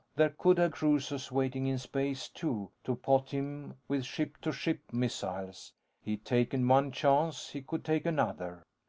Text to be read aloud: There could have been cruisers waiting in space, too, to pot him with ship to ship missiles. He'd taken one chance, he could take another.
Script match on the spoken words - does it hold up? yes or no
no